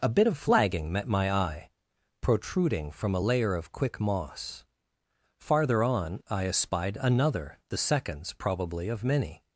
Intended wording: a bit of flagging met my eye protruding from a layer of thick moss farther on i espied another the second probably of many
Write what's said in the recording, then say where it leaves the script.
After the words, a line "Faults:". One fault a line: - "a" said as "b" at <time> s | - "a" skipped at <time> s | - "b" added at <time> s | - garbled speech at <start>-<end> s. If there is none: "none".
a bit of flagging met my eye protruding from a layer of quick moss farther on i espied another the seconds probably of many
Faults:
- "thick" said as "quick" at 3.7 s
- "second" said as "seconds" at 7.8 s